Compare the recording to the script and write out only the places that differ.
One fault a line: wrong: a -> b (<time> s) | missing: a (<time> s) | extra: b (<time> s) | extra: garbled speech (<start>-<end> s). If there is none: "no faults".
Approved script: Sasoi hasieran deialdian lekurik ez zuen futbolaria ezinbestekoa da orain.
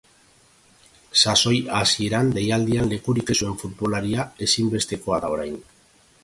no faults